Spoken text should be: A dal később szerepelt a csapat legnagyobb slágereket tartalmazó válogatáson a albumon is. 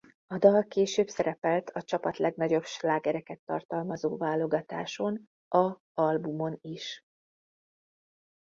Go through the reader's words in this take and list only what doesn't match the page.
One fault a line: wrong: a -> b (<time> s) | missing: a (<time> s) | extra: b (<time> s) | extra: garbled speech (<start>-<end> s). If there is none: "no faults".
no faults